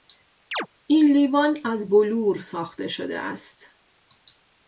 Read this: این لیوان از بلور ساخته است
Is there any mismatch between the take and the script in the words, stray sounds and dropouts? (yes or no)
yes